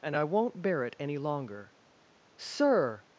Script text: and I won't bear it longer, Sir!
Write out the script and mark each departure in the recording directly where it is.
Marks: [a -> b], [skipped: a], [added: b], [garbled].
and I won't bear it [added: any] longer, Sir!